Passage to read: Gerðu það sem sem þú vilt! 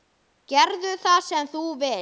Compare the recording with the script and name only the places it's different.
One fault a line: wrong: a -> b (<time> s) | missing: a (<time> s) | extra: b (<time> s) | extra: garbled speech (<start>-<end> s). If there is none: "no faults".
missing: sem (1.5 s)